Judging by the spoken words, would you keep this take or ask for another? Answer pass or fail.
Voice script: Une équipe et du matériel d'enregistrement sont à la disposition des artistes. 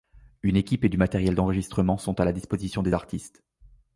pass